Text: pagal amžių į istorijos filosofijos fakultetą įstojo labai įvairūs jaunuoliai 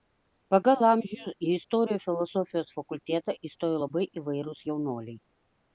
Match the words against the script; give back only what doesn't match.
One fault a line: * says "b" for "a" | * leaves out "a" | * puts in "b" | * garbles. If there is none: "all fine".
all fine